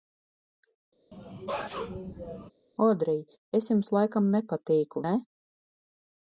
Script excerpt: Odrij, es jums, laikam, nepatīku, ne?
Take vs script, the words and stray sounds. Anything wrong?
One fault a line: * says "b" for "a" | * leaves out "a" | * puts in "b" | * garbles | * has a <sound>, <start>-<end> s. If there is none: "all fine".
* has a sneeze, 1.1-2.5 s